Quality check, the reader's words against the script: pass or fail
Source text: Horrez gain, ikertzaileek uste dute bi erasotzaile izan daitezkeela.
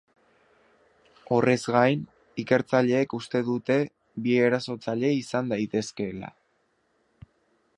pass